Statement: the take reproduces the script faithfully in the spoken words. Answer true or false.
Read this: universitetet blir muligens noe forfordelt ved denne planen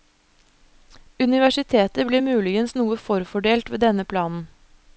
true